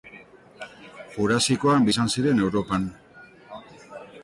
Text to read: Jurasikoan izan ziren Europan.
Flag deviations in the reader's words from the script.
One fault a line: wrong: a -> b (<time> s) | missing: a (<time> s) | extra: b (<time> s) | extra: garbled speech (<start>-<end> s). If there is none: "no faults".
no faults